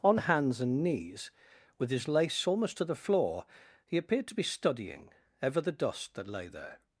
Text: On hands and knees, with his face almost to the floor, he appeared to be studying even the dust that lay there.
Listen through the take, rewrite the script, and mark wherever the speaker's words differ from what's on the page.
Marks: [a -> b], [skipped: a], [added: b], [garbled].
On hands and knees, with his [face -> lace] almost to the floor, he appeared to be studying [even -> ever] the dust that lay there.